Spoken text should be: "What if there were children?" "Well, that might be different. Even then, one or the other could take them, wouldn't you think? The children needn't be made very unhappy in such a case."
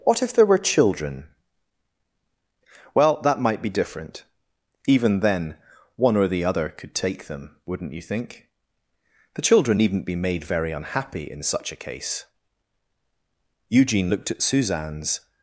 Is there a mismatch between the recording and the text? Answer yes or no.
yes